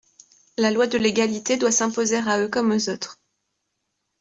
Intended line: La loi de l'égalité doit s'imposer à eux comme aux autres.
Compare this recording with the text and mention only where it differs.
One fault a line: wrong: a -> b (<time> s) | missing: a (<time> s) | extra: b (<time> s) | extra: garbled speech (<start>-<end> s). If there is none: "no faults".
no faults